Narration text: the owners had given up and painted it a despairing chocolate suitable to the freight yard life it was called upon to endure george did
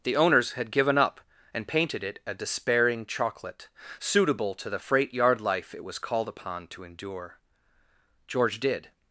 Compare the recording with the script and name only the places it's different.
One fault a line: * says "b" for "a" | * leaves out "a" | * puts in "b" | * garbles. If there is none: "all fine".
all fine